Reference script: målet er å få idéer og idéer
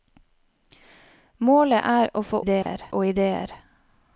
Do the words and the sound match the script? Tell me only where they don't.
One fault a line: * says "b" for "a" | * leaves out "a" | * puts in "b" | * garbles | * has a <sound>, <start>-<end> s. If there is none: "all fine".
* has a dropout, 2.6-2.7 s